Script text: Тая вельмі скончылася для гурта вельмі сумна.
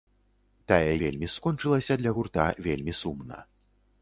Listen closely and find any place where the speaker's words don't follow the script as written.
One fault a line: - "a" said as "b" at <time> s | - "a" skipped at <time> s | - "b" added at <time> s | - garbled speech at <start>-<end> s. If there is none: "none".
none